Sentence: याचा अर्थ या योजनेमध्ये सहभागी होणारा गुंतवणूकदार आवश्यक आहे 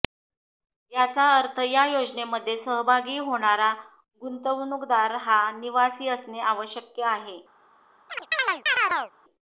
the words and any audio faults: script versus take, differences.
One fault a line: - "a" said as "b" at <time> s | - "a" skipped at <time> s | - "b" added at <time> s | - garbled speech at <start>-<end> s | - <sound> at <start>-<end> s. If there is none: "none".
- "हा निवासी असणे" added at 5.2 s
- chirp at 8.1-9.1 s